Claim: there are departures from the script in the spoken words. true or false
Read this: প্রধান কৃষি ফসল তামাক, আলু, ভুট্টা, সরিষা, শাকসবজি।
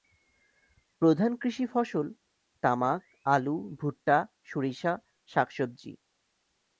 false